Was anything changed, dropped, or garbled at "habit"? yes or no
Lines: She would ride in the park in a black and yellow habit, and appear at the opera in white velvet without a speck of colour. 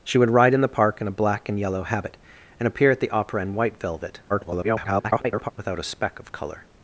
no